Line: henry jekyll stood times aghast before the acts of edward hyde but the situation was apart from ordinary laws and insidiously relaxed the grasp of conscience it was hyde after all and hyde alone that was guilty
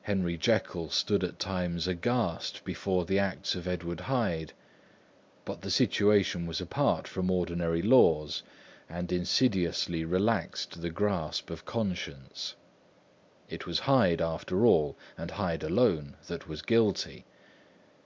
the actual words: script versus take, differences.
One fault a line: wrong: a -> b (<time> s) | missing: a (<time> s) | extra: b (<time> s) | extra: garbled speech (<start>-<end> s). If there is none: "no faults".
extra: at (1.2 s)